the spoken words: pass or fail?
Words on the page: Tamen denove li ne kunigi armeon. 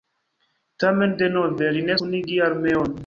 pass